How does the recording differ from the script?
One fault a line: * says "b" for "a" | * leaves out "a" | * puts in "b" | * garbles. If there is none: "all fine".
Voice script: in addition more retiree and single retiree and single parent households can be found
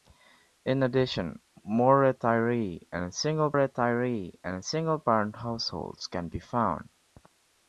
all fine